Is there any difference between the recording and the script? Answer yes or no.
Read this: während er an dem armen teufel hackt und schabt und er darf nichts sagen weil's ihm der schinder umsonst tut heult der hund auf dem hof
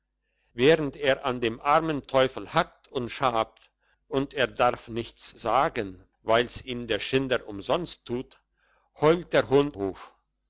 yes